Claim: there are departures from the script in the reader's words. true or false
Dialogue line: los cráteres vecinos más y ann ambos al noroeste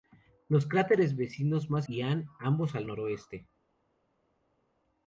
false